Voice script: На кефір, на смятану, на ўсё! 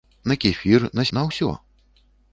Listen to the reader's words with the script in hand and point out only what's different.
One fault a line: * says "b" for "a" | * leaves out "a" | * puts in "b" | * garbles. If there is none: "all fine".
* leaves out "смятану"